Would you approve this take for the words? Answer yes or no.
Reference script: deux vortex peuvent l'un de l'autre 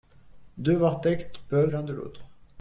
yes